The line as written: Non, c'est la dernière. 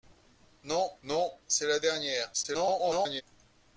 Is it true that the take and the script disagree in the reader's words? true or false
true